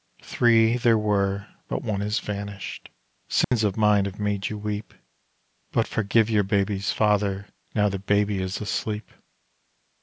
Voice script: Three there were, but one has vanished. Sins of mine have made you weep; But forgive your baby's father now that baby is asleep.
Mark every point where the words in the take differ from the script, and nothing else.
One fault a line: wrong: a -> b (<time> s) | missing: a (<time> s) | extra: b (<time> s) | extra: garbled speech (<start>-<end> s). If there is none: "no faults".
no faults